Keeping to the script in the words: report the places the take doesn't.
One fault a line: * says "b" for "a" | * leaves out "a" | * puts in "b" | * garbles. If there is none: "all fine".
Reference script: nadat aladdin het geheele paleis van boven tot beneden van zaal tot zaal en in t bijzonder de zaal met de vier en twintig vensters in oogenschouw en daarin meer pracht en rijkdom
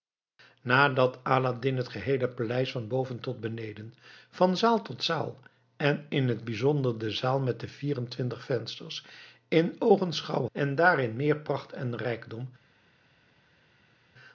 all fine